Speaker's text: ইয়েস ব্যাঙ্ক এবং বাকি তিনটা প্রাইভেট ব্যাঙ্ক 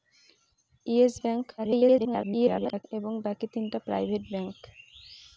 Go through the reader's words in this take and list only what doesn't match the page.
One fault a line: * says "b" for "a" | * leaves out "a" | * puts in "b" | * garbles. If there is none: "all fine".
* garbles